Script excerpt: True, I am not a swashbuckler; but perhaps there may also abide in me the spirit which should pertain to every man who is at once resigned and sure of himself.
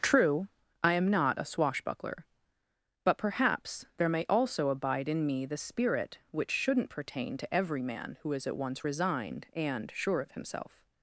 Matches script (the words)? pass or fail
fail